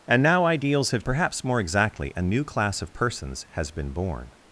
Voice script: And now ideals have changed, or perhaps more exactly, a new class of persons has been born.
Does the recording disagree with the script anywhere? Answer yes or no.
yes